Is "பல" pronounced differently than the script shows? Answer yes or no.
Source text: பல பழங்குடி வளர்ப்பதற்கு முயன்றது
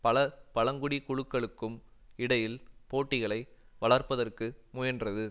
no